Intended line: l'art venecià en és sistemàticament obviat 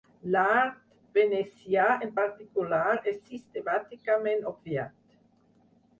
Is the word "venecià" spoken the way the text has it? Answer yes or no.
yes